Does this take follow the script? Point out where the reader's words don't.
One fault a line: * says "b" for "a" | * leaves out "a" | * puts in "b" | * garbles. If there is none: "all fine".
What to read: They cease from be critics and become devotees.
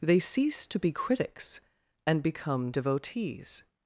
* says "to" for "from"